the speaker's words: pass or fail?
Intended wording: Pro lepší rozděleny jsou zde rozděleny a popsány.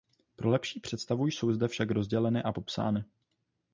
fail